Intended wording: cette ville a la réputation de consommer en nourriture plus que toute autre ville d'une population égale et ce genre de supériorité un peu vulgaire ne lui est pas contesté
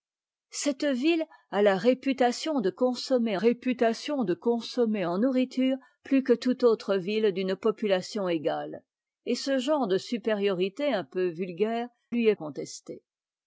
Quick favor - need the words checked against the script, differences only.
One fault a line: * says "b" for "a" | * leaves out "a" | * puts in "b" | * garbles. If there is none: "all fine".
* puts in "réputation de consommer"
* leaves out "ne"
* leaves out "pas"